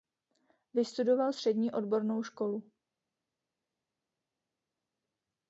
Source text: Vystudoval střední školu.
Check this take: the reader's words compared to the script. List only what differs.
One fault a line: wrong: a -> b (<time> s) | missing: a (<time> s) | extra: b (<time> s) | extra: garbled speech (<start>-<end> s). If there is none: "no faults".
extra: odbornou (1.7 s)